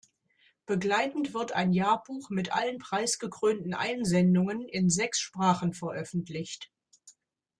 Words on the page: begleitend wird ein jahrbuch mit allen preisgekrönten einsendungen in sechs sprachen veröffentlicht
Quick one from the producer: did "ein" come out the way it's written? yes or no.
yes